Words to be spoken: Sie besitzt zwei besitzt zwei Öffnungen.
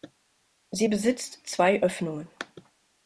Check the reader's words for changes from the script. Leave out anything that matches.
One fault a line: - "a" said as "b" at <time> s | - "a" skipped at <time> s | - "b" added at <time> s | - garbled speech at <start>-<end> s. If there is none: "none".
- "besitzt zwei" skipped at 1.8 s